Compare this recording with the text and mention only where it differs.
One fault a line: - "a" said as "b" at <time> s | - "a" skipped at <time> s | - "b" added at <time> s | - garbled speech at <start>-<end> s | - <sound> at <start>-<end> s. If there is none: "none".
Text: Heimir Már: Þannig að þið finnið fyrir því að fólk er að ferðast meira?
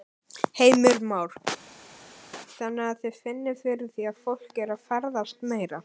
none